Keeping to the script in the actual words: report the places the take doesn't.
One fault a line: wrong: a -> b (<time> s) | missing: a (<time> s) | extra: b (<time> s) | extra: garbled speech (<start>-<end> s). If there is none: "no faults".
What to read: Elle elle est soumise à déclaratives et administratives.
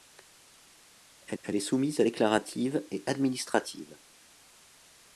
no faults